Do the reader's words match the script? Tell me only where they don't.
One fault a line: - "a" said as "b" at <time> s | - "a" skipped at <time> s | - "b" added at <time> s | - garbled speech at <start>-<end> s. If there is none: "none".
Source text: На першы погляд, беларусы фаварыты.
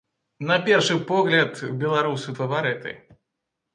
none